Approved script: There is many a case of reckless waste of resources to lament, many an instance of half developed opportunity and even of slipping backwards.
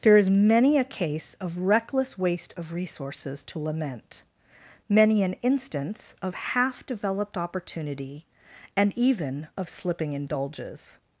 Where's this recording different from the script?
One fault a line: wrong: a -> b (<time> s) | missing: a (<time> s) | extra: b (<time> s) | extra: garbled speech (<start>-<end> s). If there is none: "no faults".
wrong: backwards -> indulges (10.1 s)